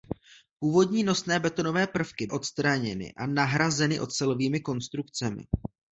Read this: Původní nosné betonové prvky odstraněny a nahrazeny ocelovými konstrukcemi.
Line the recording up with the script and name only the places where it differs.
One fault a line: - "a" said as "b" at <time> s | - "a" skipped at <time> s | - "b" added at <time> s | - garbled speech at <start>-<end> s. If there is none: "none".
none